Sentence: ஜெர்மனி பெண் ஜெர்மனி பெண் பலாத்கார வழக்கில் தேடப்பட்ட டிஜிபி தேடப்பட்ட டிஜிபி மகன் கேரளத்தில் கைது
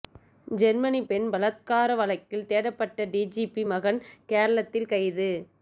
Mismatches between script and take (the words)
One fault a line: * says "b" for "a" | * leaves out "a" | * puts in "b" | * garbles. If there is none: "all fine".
* leaves out "ஜெர்மனி பெண்"
* leaves out "தேடப்பட்ட டிஜிபி"